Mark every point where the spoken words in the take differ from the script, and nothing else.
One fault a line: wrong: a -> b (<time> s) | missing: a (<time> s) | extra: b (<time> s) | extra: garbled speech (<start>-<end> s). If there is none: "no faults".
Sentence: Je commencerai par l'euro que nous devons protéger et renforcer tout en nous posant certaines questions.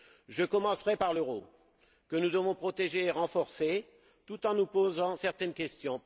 no faults